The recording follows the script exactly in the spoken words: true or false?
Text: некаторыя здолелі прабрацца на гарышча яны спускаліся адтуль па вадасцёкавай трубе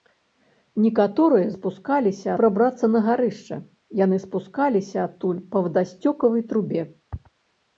false